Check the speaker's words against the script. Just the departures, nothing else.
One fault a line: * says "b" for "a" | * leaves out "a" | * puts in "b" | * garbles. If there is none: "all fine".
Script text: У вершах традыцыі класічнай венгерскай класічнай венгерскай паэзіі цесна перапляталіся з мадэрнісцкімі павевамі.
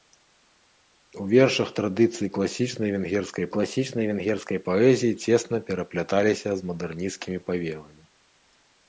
all fine